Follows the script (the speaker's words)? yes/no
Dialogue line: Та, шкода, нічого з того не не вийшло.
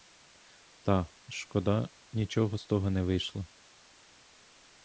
no